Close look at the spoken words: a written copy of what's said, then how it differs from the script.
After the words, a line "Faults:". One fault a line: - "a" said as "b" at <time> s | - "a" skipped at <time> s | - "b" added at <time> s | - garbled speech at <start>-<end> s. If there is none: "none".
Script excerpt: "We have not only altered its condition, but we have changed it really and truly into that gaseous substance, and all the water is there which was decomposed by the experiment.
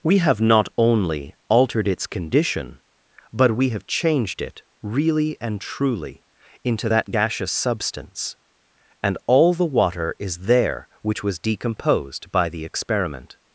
"We have not only altered its condition, but we have changed it really and truly into that gaseous substance, and all the water is there which was decomposed by the experiment.
Faults:
none